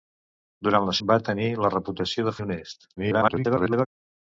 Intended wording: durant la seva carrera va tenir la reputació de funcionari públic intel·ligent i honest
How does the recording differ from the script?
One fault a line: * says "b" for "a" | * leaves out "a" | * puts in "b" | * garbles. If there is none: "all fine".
* leaves out "seva carrera"
* leaves out "funcionari públic intel·ligent"
* garbles